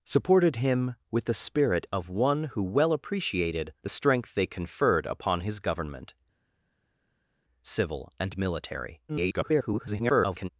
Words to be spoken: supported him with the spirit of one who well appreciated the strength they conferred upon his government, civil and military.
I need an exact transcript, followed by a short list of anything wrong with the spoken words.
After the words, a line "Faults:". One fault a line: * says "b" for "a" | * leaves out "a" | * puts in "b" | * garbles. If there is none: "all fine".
supported him with the spirit of one who well appreciated the strength they conferred upon his government, civil and military. [garbled]
Faults:
* garbles